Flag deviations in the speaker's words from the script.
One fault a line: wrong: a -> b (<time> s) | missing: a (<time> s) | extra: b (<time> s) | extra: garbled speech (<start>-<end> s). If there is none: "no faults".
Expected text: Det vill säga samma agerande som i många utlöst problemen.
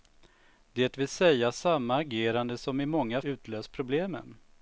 no faults